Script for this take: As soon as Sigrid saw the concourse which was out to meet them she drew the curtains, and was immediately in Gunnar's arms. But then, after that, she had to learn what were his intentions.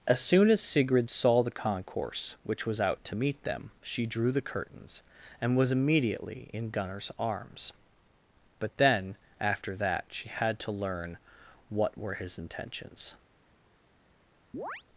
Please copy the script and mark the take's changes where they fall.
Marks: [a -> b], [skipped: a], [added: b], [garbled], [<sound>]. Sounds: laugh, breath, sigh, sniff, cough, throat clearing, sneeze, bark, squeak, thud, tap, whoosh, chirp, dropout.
As soon as Sigrid saw the concourse which was out to meet them she drew the curtains, and was immediately in Gunnar's arms. But then, after that, she had to learn what were his intentions. [chirp]